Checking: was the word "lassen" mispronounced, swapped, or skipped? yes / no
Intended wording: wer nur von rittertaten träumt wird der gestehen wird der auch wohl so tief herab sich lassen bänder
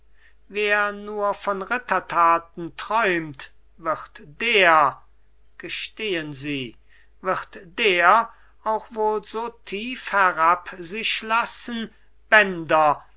no